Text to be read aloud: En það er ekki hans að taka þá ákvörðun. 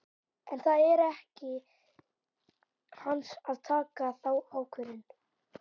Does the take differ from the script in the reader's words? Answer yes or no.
no